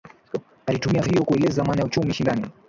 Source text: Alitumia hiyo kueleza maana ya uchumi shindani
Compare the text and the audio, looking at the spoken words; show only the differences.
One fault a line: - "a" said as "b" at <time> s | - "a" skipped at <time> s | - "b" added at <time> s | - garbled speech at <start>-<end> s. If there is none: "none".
none